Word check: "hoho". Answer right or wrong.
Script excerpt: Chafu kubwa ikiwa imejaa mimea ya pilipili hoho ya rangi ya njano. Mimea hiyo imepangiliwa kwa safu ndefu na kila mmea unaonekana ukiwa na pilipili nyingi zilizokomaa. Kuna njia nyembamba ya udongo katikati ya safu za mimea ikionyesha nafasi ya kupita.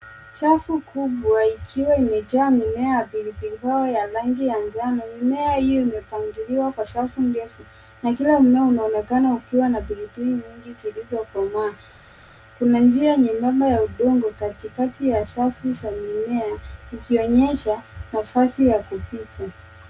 right